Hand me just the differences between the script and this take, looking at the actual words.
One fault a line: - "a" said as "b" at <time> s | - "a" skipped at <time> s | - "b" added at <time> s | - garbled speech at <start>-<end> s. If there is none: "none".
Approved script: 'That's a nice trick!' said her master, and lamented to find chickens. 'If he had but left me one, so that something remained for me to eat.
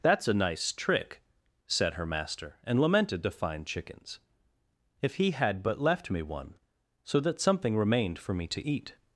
none